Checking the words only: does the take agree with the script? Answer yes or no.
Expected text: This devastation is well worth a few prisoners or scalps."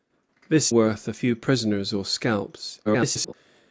no